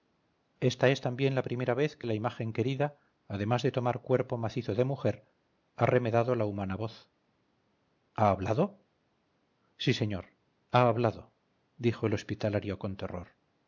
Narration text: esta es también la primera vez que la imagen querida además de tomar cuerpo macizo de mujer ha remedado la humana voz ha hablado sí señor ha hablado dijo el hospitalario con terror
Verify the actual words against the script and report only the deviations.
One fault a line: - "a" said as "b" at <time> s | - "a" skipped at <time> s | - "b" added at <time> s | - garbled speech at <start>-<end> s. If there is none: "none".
none